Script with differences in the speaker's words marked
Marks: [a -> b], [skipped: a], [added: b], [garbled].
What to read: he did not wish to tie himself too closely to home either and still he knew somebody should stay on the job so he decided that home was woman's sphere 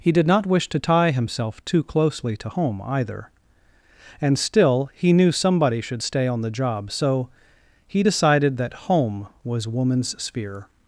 he did not wish to tie himself too closely to home either and still he knew somebody should stay on the job so he decided that home was woman's sphere